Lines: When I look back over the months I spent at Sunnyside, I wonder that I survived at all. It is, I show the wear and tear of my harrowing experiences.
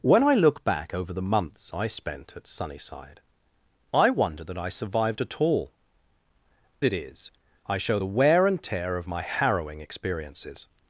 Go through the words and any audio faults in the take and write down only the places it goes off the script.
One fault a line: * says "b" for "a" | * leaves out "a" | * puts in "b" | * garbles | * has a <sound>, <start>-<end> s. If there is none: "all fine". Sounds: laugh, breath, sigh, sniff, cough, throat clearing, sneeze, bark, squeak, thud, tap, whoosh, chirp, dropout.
all fine